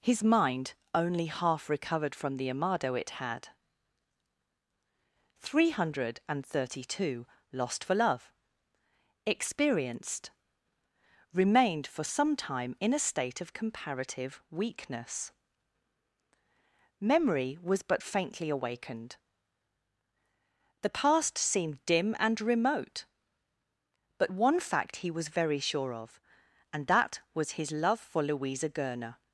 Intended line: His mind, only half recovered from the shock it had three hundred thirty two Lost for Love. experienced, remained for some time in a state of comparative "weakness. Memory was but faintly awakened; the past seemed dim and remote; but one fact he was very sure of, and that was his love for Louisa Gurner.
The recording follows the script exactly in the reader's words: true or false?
false